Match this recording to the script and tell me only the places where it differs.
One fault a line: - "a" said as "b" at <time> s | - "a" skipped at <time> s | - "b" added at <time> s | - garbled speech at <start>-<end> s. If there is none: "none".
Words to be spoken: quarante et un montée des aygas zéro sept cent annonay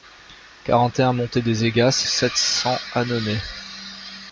- "zéro" skipped at 2.0 s